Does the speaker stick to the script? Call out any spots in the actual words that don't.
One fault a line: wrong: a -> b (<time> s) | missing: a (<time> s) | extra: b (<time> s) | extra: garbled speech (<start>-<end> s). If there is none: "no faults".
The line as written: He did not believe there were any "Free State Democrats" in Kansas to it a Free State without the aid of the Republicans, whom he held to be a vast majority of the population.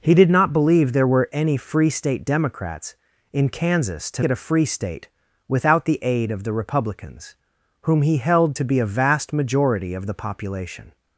no faults